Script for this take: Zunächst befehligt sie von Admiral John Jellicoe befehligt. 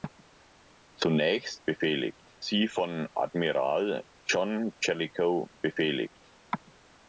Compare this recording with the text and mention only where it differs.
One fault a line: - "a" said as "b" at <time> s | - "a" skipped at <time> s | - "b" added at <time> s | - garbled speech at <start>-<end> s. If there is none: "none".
none